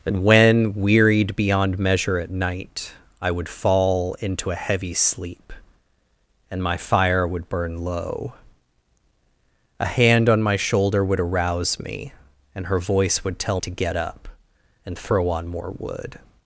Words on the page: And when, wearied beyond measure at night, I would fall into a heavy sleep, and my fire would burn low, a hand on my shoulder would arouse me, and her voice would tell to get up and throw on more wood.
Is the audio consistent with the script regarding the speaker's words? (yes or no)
yes